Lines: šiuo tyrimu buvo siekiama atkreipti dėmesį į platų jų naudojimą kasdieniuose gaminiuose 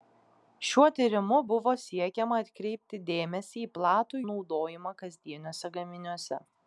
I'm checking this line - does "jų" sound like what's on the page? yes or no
no